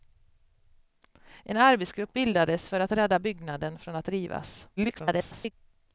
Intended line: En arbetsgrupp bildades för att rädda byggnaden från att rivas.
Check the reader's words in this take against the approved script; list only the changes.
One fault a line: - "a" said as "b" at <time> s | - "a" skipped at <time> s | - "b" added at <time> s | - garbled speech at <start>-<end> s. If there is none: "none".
- garbled speech at 4.8-5.5 s